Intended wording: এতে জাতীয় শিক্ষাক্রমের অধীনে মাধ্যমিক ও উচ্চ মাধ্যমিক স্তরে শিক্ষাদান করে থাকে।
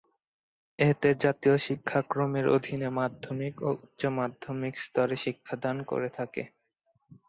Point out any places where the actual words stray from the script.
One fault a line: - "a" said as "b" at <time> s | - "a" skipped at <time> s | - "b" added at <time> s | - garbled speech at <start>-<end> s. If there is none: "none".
none